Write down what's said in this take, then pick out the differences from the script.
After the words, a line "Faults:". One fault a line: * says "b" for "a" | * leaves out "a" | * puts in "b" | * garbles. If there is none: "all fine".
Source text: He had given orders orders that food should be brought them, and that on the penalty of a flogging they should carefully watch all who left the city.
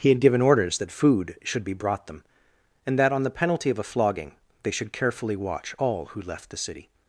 He had given orders that food should be brought them, and that on the penalty of a flogging they should carefully watch all who left the city.
Faults:
* leaves out "orders"